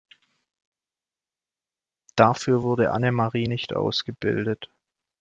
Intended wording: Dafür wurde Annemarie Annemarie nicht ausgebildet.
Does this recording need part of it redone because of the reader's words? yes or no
yes